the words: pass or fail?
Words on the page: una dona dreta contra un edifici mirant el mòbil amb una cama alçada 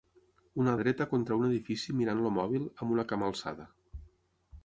fail